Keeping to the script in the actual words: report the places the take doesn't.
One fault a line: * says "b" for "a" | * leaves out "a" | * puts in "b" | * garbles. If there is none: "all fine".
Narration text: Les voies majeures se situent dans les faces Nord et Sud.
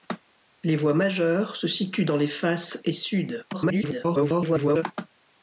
* leaves out "Nord"
* garbles